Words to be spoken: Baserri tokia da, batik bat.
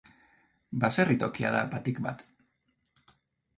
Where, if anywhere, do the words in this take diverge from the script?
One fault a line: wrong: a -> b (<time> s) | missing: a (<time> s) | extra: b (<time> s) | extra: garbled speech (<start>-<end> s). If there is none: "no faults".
no faults